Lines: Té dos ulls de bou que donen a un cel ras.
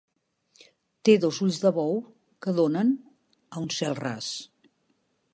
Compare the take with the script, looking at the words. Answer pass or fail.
pass